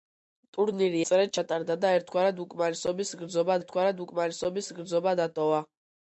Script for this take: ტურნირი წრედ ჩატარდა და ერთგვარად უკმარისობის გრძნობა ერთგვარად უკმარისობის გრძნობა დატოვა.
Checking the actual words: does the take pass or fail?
pass